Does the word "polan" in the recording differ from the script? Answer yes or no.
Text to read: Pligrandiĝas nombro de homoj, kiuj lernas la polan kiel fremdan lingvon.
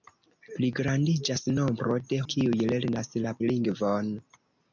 yes